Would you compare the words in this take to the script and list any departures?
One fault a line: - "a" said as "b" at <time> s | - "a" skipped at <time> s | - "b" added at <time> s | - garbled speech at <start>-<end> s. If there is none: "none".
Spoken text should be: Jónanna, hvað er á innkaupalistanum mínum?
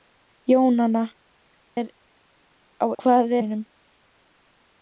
- "hvað" skipped at 1.0 s
- "innkaupalistanum" said as "hvað" at 3.0 s